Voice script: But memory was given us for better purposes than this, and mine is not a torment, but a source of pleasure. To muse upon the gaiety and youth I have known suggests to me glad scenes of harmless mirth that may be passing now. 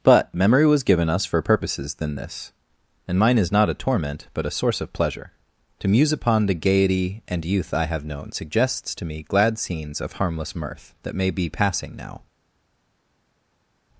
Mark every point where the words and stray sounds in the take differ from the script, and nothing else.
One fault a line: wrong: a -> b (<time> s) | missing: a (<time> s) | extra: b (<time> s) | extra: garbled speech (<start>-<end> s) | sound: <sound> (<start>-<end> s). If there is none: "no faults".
missing: better (1.4 s)